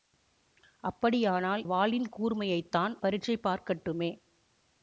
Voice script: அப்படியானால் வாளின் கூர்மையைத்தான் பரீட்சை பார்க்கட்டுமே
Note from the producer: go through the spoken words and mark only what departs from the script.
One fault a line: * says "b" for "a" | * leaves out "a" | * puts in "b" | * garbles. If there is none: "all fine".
all fine